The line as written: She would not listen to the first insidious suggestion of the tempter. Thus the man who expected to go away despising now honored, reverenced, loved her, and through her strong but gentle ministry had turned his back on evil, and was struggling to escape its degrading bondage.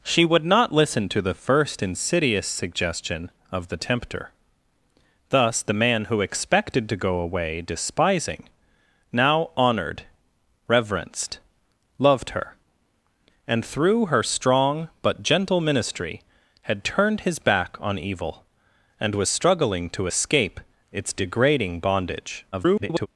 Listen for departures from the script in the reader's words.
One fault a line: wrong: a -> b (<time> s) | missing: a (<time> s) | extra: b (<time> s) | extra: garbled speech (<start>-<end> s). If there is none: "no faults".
extra: garbled speech (22.5-23.1 s)